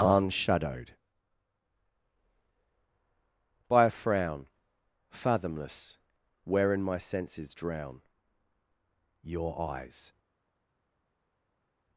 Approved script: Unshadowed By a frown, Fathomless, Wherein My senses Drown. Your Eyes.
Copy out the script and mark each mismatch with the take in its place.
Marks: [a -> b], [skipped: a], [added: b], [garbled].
Unshadowed By a frown, Fathomless, Wherein My senses Drown. Your Eyes.